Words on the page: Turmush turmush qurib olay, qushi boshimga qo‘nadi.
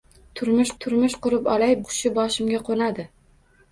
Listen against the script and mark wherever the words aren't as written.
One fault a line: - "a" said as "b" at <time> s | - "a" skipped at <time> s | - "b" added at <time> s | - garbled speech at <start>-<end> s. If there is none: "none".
none